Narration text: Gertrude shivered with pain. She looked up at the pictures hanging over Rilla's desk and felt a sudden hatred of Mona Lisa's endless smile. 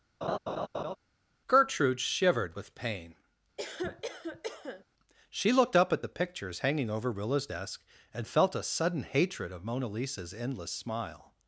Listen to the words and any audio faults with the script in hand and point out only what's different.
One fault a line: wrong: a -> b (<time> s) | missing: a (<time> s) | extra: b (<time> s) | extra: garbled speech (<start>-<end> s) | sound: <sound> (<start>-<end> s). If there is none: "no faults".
sound: laugh (0.2-1.0 s)
sound: cough (3.6-4.8 s)